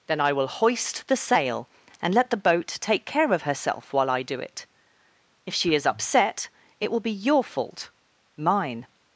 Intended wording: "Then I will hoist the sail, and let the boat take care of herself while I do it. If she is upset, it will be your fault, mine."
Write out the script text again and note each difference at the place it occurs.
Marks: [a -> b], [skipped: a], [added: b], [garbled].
"Then I will hoist the sail, and let the boat take care of herself while I do it. If she is upset, it will be your fault, mine."